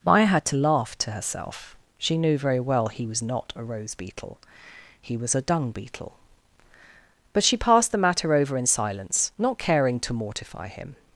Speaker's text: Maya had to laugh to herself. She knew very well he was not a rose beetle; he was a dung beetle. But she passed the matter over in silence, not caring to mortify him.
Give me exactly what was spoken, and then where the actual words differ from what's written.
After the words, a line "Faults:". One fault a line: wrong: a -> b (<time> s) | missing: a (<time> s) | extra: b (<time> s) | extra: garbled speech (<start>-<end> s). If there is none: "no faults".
Maya had to laugh to herself. She knew very well he was not a rose beetle; he was a dung beetle. But she passed the matter over in silence, not caring to mortify him.
Faults:
no faults